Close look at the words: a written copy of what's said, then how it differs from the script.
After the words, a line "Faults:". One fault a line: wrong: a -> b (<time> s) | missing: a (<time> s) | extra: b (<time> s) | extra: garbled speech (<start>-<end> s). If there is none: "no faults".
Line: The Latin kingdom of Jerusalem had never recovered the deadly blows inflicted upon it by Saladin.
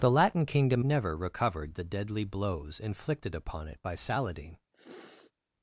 The Latin kingdom never recovered the deadly blows inflicted upon it by Saladin.
Faults:
missing: of Jerusalem had (0.8 s)